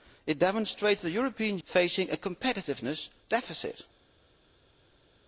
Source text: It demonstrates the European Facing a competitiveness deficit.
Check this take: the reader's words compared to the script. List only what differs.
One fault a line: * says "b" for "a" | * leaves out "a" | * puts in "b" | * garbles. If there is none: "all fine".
all fine